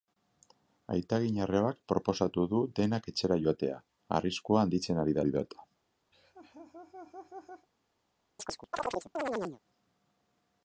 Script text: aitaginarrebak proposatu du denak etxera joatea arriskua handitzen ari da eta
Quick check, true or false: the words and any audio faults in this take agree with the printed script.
false